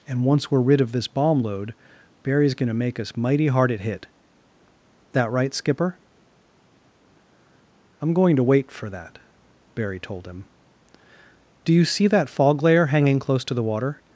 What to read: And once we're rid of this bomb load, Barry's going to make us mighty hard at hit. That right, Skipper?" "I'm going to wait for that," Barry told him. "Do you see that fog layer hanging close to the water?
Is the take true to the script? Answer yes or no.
yes